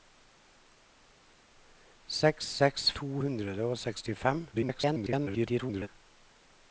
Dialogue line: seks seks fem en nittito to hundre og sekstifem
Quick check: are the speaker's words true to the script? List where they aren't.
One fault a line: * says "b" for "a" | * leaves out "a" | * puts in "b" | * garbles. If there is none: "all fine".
* leaves out "fem en nittito"
* garbles